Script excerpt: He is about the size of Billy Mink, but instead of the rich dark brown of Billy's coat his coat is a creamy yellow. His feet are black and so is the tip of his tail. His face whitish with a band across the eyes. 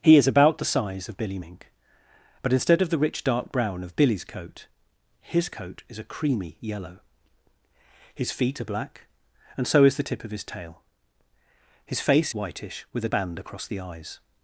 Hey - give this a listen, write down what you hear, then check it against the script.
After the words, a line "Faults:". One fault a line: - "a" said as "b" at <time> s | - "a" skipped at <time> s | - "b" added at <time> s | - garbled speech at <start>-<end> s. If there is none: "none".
He is about the size of Billy Mink, but instead of the rich dark brown of Billy's coat his coat is a creamy yellow. His feet are black and so is the tip of his tail. His face whitish with a band across the eyes.
Faults:
none